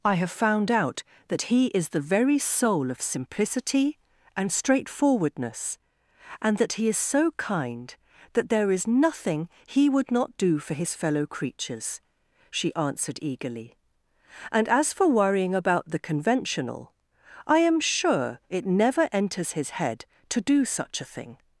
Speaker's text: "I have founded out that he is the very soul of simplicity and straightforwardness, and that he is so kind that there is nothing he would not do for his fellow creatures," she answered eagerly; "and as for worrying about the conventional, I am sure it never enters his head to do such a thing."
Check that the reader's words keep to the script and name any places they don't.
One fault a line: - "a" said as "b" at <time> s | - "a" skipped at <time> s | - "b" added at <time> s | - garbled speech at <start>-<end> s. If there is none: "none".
- "founded" said as "found" at 0.3 s